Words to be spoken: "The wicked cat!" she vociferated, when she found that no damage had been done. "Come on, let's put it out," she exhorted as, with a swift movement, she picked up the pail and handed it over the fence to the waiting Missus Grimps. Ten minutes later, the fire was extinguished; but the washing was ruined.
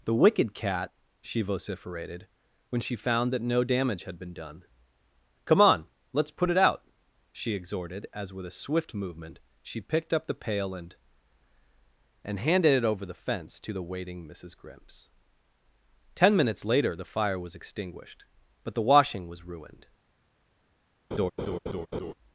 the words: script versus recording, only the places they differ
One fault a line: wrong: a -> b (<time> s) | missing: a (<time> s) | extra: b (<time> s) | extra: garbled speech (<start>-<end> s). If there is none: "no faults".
extra: and (12.2 s)